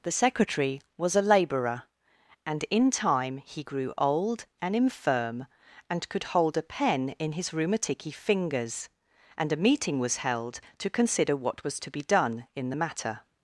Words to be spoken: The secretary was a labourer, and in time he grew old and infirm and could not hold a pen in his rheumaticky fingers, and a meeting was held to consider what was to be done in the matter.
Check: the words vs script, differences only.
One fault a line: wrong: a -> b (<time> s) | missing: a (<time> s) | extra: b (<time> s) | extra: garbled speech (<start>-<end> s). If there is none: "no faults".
missing: not (6.2 s)